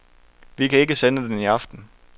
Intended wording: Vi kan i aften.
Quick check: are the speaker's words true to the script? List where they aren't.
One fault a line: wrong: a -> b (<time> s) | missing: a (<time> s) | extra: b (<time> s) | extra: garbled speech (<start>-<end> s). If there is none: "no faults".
extra: ikke sende den (0.8 s)